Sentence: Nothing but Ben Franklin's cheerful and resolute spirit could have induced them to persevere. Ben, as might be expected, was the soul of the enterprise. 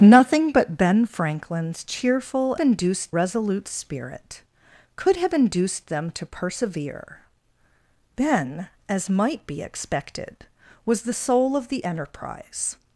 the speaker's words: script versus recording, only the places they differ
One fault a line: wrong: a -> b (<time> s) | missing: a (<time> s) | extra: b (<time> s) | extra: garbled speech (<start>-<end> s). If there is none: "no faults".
wrong: and -> induced (2.6 s)